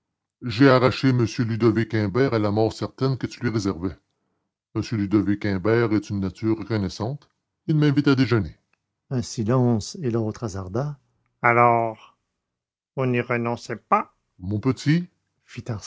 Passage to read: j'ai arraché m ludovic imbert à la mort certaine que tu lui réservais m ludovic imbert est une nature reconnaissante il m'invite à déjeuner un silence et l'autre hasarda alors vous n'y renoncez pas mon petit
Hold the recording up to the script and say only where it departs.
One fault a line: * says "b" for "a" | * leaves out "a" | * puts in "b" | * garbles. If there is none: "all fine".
all fine